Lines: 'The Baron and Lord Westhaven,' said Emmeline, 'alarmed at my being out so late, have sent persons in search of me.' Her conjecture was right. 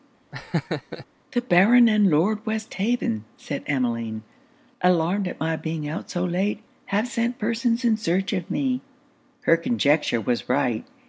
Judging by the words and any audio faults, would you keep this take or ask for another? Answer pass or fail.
fail